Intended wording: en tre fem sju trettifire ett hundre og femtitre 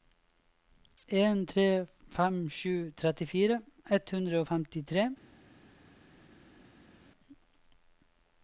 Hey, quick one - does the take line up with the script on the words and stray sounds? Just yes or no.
yes